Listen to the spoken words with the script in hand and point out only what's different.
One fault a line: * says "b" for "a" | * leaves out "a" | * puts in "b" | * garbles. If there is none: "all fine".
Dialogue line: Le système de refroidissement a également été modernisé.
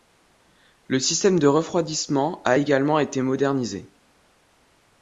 all fine